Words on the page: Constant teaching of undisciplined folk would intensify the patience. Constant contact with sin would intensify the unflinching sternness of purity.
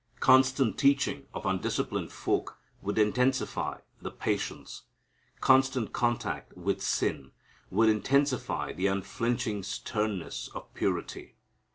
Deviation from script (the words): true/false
false